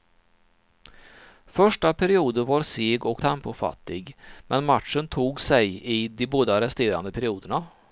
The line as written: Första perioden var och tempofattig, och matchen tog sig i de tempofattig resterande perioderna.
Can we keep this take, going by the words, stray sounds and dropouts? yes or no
no